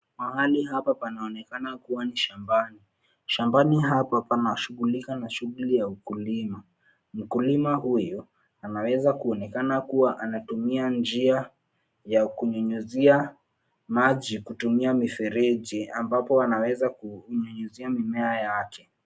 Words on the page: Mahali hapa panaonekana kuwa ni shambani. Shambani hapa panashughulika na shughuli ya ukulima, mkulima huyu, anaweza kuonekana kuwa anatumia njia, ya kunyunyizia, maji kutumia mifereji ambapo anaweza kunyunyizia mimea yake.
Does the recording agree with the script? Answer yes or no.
yes